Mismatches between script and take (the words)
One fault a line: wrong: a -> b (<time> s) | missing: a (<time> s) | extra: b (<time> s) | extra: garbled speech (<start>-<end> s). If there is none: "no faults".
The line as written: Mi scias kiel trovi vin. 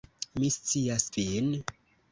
missing: kiel trovi (1.1 s)